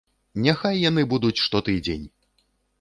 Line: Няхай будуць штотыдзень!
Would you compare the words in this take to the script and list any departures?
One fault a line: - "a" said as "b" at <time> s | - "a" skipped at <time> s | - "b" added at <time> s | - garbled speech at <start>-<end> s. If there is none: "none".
- "яны" added at 0.9 s